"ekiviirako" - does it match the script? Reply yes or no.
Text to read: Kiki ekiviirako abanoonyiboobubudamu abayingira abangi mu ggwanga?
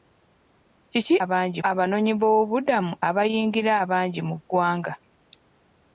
no